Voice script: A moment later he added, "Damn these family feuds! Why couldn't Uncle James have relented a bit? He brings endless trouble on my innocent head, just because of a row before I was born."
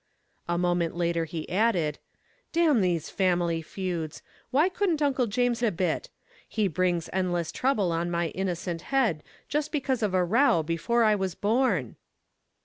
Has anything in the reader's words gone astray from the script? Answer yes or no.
yes